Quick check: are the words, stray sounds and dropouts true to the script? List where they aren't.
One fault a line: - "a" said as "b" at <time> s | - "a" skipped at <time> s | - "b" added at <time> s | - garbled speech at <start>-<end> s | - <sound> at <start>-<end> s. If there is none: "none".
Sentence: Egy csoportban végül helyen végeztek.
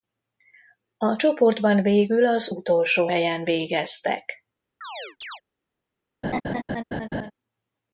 - "Egy" said as "A" at 1.0 s
- "az utolsó" added at 2.3 s
- chirp at 4.8-5.4 s
- laugh at 6.2-7.3 s